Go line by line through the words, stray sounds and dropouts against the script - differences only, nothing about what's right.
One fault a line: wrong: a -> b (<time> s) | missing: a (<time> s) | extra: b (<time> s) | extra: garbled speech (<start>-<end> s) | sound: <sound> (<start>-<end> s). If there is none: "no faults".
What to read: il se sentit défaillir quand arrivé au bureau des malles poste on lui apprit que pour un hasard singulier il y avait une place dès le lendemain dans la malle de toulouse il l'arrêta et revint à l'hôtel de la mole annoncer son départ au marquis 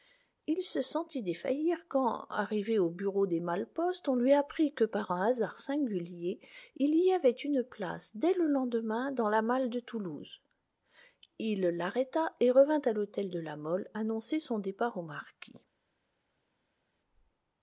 wrong: pour -> par (4.8 s)